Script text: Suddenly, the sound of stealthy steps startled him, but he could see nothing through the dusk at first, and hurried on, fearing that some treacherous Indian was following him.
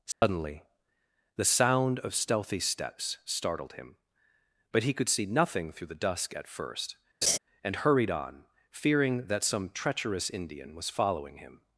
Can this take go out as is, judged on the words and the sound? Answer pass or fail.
fail